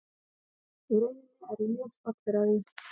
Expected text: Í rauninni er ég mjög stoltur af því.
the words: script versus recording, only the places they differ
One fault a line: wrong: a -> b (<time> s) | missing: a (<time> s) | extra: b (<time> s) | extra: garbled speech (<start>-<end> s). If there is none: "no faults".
no faults